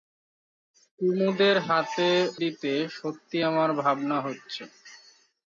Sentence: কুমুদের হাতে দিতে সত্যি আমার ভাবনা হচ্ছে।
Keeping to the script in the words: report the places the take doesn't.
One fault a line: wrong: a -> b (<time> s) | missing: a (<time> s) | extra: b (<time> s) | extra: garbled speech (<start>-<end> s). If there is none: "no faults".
no faults